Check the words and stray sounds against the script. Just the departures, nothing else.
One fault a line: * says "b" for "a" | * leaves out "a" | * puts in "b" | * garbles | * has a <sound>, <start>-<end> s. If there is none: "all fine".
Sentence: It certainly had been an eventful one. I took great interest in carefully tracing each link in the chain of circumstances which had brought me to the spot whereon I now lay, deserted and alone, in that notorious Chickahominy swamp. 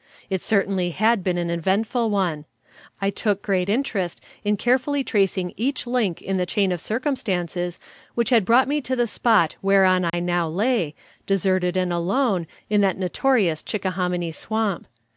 * has a dropout, 10.1-10.1 s